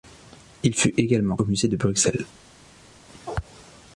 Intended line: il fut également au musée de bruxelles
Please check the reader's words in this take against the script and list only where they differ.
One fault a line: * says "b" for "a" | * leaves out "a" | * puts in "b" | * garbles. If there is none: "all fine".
all fine